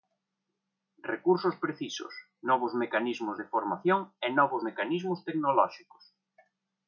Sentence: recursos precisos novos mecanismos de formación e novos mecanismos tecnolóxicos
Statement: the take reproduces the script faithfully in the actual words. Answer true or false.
true